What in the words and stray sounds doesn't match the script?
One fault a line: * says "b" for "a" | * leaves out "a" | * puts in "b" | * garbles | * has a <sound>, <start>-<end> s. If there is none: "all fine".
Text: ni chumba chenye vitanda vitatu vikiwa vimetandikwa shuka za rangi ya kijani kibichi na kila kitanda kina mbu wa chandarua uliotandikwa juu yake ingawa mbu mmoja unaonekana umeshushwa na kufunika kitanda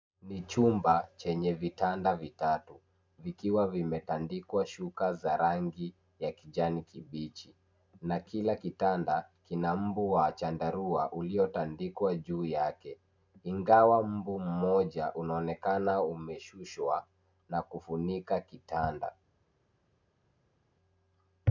all fine